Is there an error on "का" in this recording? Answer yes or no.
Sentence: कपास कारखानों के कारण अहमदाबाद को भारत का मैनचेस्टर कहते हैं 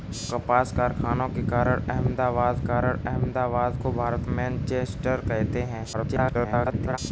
yes